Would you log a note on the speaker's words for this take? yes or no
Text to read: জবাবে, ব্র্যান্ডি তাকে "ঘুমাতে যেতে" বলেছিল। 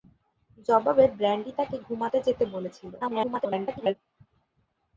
yes